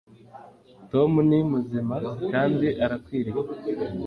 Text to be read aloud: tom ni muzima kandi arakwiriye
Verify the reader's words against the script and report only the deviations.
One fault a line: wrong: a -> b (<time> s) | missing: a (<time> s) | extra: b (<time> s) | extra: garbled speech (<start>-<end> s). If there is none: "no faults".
no faults